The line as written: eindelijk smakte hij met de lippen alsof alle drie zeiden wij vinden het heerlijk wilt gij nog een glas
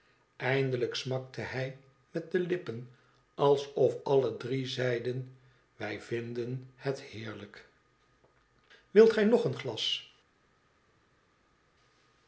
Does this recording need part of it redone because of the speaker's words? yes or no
no